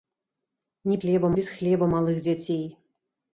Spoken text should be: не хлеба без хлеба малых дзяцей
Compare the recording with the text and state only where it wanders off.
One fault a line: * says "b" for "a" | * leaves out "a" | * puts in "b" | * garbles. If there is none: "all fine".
all fine